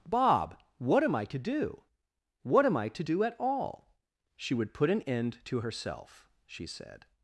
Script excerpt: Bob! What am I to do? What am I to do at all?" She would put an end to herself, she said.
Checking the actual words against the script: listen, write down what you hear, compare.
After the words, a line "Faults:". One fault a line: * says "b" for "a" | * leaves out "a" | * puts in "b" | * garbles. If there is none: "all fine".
Bob! What am I to do? What am I to do at all?" She would put an end to herself, she said.
Faults:
all fine